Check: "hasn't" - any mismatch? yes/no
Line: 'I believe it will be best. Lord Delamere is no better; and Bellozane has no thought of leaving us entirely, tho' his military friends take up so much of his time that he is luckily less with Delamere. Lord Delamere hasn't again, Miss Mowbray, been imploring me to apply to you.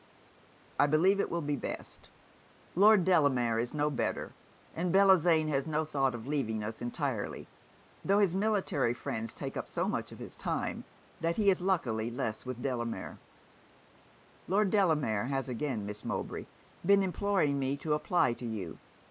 yes